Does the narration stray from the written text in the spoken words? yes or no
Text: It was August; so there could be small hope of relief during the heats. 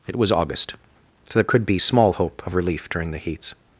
no